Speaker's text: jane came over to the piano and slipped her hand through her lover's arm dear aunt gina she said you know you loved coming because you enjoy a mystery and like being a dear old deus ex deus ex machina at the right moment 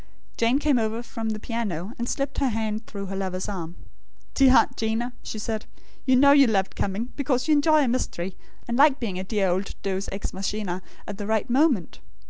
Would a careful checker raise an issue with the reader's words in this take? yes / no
yes